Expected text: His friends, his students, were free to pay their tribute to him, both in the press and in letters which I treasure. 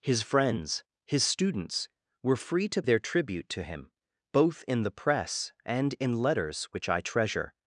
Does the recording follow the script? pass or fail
fail